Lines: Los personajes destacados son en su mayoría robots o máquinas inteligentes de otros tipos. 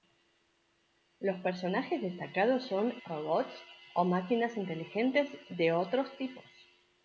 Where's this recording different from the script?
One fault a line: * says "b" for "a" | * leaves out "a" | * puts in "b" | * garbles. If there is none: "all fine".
* leaves out "en su mayoría"